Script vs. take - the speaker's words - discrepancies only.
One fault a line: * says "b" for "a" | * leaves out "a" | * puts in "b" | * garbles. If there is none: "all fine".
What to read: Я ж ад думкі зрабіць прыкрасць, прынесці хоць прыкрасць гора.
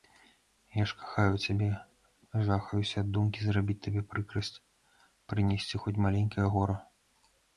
* puts in "кахаю цябе жахаюся"
* puts in "табе"
* says "маленькае" for "прыкрасць"